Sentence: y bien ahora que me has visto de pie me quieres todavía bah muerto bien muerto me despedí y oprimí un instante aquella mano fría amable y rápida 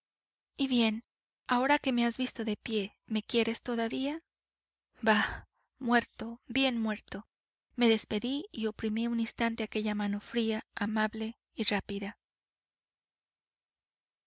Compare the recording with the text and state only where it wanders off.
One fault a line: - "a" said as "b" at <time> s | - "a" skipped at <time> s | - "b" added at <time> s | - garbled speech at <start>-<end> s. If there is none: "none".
none